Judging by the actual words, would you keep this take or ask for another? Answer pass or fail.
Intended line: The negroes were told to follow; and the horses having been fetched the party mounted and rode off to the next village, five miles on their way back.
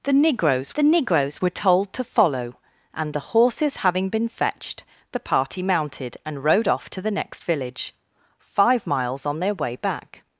fail